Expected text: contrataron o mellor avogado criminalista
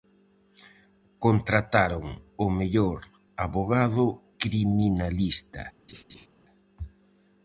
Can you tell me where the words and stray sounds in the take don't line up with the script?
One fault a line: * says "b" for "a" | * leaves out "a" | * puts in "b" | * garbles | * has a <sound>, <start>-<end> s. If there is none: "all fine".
* has a laugh, 5.9-6.3 s